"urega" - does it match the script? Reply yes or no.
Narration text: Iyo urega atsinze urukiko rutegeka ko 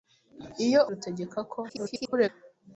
no